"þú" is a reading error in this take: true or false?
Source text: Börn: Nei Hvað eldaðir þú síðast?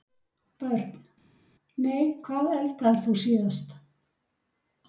false